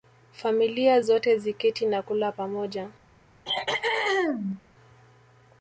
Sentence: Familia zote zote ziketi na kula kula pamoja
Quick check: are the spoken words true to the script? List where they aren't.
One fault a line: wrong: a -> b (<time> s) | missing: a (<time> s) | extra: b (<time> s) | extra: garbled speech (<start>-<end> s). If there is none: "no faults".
missing: zote (1.4 s)
missing: kula (2.3 s)